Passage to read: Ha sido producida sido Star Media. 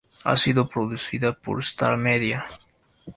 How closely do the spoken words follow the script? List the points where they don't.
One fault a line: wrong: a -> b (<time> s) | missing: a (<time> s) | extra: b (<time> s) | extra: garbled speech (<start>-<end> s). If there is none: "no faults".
wrong: sido -> por (1.3 s)